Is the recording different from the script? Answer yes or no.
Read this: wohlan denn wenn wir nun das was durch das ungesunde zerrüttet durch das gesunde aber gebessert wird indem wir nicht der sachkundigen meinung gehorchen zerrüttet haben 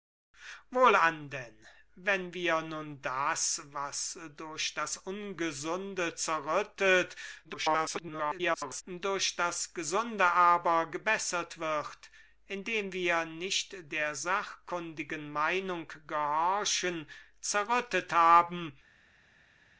yes